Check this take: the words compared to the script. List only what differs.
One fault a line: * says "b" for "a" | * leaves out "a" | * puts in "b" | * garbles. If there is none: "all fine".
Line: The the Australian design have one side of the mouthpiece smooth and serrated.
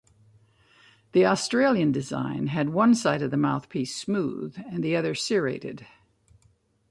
* leaves out "the"
* says "had" for "have"
* puts in "the other"